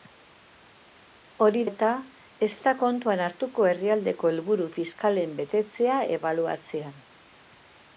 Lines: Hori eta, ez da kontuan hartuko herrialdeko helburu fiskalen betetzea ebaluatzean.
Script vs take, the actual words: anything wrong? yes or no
no